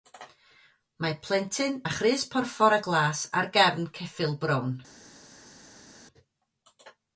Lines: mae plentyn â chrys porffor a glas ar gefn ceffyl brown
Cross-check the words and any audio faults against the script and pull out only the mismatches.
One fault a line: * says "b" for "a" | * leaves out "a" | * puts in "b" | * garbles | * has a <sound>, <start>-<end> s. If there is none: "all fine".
all fine